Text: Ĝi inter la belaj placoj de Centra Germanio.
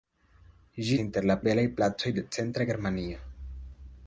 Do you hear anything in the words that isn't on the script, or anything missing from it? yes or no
no